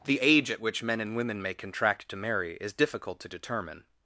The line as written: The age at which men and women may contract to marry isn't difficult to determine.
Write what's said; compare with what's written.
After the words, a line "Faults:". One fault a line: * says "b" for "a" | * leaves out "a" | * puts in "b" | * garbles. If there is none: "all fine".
The age at which men and women may contract to marry is difficult to determine.
Faults:
* says "is" for "isn't"